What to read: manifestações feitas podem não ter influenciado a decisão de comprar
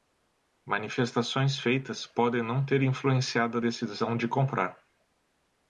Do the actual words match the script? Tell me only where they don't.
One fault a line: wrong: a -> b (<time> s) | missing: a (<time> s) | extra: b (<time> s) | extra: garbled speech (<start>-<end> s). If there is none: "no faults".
no faults